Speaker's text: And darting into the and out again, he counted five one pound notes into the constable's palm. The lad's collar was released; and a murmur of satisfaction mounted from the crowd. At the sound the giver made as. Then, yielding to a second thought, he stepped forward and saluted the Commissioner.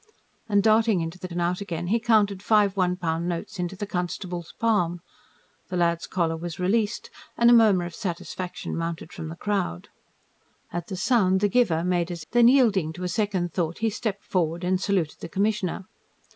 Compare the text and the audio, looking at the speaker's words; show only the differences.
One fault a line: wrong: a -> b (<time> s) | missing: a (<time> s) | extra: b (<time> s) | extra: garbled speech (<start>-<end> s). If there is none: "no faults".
no faults